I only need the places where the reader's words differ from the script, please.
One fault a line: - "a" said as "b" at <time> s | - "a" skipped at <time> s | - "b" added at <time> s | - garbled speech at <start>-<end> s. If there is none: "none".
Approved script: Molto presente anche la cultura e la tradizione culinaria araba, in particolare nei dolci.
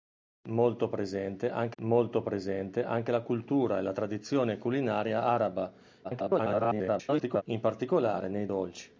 - "molto presente anche" added at 1.8 s
- garbled speech at 6.0-7.4 s